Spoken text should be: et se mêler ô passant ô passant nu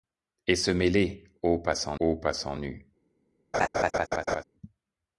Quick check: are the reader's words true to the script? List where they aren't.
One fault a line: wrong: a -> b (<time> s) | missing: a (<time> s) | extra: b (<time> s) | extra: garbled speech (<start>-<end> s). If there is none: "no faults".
no faults